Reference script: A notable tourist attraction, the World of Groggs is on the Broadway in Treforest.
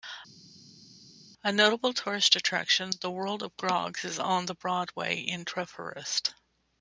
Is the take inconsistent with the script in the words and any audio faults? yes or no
no